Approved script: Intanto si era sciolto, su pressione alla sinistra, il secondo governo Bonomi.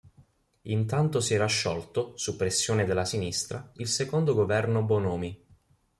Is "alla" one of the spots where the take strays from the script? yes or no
yes